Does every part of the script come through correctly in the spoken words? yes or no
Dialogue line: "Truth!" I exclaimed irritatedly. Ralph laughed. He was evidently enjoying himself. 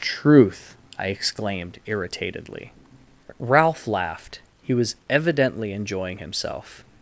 yes